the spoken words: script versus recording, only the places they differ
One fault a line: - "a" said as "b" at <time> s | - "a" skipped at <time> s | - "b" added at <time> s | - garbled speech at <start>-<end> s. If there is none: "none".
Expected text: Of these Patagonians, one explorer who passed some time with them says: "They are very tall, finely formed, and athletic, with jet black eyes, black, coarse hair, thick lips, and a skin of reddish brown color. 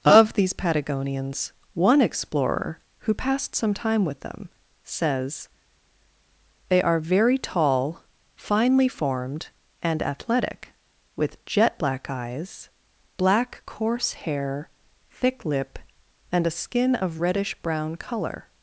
- "lips" said as "lip" at 15.5 s